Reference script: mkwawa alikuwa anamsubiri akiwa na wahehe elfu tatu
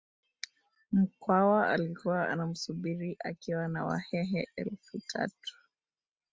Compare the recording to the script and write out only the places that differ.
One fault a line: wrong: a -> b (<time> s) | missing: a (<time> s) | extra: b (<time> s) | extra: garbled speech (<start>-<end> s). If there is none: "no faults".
no faults